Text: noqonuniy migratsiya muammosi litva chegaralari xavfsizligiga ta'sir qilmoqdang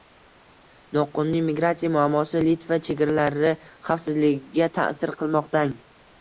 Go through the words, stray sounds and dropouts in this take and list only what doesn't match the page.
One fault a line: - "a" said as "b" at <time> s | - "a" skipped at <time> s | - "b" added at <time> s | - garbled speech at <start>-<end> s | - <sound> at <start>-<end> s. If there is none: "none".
none